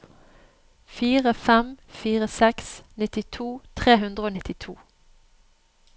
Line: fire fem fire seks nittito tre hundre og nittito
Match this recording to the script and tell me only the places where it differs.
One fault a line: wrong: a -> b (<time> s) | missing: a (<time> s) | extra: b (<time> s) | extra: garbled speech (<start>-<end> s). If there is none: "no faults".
no faults